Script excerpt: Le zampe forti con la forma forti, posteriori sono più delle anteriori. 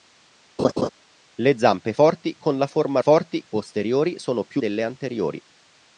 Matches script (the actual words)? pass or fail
pass